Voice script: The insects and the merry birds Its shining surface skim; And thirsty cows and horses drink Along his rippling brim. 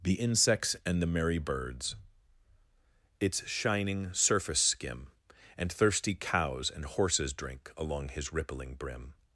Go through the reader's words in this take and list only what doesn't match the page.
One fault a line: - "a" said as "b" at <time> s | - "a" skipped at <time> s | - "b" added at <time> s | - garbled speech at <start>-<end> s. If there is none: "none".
none